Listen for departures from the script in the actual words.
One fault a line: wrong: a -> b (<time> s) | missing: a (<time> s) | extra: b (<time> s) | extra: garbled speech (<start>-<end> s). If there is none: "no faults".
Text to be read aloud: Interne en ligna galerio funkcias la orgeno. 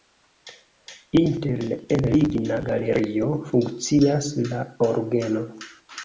no faults